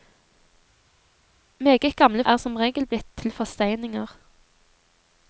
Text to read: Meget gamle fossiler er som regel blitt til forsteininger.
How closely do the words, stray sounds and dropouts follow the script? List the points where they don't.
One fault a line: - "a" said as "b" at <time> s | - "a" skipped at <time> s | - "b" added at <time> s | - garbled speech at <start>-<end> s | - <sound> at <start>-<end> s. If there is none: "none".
- "fossiler" skipped at 2.2 s